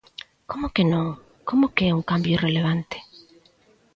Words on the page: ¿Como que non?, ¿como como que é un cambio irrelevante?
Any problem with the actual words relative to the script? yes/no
yes